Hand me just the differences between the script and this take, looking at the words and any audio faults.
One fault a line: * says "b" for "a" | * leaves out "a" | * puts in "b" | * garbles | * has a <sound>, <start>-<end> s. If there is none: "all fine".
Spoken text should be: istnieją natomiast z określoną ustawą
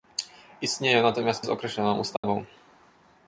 * has a dropout, 2.2-2.2 s